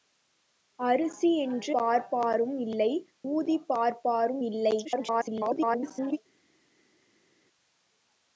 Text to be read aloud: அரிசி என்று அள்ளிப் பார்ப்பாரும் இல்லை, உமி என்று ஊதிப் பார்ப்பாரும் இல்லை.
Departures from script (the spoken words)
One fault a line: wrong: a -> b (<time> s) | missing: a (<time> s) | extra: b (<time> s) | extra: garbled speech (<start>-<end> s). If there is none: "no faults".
missing: அள்ளிப் (1.7 s)
missing: உமி என்று (2.9 s)
extra: garbled speech (4.8-6.2 s)